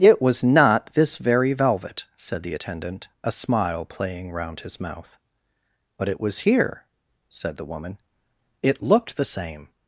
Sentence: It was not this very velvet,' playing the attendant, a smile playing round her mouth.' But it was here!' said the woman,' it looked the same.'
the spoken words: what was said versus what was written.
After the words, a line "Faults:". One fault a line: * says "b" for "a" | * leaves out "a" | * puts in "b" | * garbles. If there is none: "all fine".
It was not this very velvet,' said the attendant, a smile playing round his mouth.' But it was here!' said the woman,' it looked the same.'
Faults:
* says "said" for "playing"
* says "his" for "her"